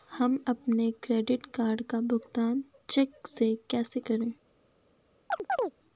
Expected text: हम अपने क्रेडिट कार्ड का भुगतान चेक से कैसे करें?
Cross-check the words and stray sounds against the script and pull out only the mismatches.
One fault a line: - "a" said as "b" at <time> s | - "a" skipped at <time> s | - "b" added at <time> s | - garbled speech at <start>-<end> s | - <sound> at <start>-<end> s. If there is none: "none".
- chirp at 5.3-5.7 s